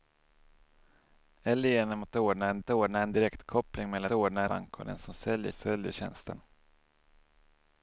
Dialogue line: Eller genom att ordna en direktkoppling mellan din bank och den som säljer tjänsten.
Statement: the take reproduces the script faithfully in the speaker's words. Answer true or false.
false